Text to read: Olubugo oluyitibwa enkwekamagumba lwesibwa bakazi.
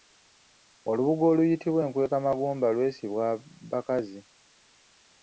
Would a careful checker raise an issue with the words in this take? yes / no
no